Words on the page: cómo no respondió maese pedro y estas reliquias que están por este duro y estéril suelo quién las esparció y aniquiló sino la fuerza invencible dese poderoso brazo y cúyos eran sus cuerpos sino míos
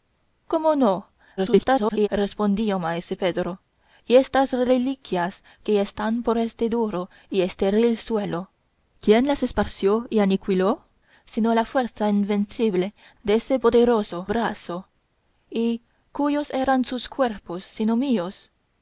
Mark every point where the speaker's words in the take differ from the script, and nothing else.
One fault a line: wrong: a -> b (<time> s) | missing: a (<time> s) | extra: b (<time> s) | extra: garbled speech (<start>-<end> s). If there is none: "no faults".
extra: garbled speech (1.4-2.1 s)